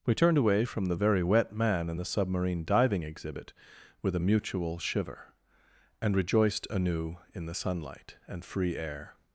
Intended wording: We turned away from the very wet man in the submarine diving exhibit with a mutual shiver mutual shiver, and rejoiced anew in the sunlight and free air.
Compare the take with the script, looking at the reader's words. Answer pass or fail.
fail